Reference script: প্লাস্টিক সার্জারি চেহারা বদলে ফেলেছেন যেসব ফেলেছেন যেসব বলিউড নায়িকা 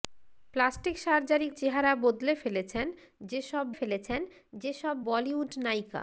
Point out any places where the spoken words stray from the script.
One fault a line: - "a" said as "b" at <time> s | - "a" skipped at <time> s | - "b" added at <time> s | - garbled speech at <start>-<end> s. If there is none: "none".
none